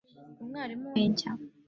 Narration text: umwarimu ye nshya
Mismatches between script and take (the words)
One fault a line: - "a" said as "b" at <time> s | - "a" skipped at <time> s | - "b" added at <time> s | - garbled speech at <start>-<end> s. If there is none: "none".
none